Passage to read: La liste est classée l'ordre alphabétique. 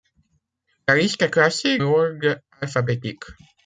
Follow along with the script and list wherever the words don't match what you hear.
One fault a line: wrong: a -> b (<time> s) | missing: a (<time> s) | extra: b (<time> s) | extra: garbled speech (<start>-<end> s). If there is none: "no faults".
no faults